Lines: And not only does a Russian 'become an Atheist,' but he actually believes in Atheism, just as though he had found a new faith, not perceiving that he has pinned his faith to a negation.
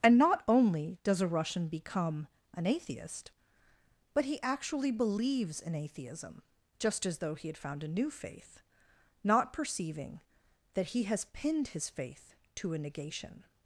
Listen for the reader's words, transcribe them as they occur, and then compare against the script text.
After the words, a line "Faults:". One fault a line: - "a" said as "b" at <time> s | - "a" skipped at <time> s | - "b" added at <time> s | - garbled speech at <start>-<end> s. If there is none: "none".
And not only does a Russian 'become an Atheist,' but he actually believes in Atheism, just as though he had found a new faith, not perceiving that he has pinned his faith to a negation.
Faults:
none